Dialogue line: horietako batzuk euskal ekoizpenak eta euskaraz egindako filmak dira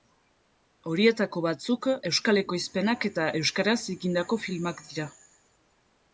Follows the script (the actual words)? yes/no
yes